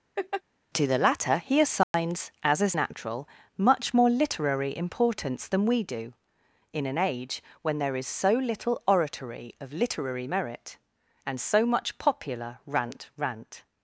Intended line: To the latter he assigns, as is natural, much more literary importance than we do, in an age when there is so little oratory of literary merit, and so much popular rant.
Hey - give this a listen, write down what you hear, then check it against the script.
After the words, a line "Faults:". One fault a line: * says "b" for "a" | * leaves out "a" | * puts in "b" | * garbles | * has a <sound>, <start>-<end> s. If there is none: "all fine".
To the latter he assigns, as is natural, much more literary importance than we do, in an age when there is so little oratory of literary merit, and so much popular rant rant.
Faults:
* has a laugh, 0.2-0.4 s
* has a dropout, 1.8-1.9 s
* puts in "rant"